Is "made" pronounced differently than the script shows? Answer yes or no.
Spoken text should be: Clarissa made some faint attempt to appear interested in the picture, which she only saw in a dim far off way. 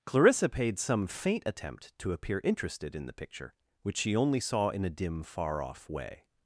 yes